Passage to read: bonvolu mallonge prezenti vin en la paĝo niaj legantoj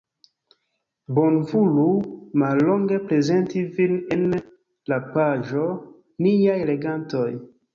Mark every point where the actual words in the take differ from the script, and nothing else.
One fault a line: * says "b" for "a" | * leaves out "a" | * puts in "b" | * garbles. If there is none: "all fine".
all fine